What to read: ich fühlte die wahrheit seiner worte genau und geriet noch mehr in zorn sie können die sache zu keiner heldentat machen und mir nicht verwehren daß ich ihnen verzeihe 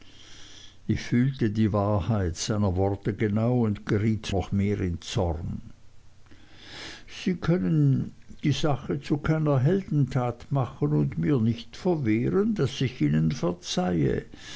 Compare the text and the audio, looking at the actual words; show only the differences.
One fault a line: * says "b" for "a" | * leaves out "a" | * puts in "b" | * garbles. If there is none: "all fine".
all fine